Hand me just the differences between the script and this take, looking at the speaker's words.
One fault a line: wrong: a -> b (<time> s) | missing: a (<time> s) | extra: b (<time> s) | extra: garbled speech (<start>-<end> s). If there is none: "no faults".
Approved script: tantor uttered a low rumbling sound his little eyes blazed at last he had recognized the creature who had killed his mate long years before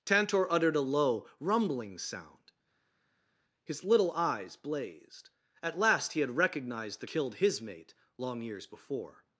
missing: creature who had (7.1 s)